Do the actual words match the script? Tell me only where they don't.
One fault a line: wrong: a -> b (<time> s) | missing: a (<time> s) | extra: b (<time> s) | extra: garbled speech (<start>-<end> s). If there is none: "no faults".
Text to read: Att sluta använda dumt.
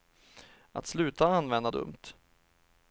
no faults